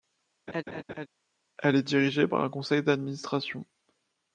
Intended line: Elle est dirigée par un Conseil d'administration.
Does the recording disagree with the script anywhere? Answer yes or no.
no